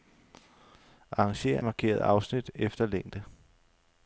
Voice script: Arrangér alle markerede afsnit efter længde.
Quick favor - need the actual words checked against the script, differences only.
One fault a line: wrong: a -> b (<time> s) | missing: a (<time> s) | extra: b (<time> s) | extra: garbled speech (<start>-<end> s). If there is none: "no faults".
missing: alle (1.6 s)